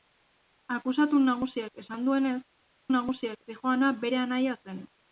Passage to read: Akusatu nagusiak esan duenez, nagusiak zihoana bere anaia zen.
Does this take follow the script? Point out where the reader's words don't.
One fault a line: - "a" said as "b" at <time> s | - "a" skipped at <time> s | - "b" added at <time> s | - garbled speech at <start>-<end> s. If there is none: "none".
none